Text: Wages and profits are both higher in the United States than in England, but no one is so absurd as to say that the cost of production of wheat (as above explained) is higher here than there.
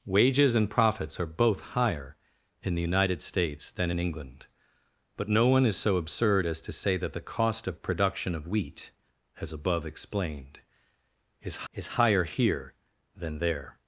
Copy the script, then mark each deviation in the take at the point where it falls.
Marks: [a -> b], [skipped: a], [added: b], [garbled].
Wages and profits are both higher in the United States than in England, but no one is so absurd as to say that the cost of production of wheat (as above explained) is [added: is] higher here than there.